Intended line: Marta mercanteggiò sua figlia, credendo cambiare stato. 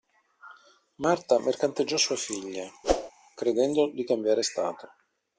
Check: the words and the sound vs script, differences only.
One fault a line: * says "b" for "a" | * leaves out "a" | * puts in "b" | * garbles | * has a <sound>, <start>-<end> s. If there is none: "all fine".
* has a whoosh, 2.8-3.1 s
* puts in "di"